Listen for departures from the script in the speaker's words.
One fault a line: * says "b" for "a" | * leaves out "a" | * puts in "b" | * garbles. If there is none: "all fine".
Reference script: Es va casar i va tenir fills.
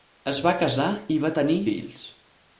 all fine